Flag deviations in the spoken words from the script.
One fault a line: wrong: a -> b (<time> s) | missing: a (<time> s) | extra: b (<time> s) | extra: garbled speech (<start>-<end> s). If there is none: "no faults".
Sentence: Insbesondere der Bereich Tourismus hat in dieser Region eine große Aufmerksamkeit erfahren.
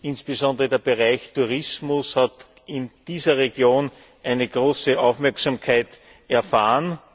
no faults